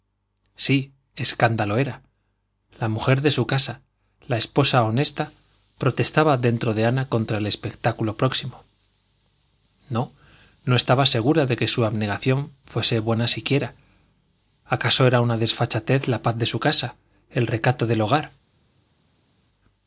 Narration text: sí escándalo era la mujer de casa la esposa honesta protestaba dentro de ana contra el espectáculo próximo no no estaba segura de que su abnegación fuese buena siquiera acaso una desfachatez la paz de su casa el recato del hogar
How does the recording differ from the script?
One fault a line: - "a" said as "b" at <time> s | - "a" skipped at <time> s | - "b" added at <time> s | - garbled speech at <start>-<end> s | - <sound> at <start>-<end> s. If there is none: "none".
- "su" added at 3.3 s
- "era" added at 15.1 s